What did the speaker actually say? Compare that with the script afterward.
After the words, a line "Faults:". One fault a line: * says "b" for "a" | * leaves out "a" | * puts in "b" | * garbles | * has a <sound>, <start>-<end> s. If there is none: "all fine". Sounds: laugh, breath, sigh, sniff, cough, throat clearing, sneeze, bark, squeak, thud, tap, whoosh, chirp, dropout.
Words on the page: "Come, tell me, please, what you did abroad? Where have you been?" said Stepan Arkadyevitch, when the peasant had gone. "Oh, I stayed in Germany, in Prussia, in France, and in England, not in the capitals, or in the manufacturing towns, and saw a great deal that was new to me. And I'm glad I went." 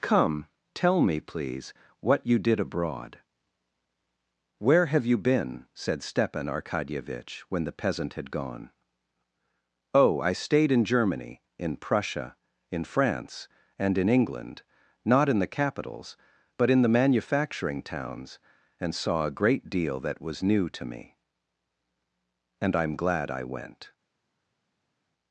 "Come, tell me, please, what you did abroad? Where have you been?" said Stepan Arkadyevitch, when the peasant had gone. "Oh, I stayed in Germany, in Prussia, in France, and in England, not in the capitals, but in the manufacturing towns, and saw a great deal that was new to me. And I'm glad I went."
Faults:
* says "but" for "or"